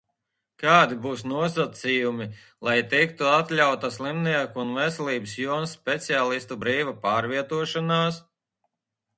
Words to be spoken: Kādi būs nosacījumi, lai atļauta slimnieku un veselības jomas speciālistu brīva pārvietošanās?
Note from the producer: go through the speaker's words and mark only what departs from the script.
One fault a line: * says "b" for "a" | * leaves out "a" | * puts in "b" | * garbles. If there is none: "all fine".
* puts in "tiktu"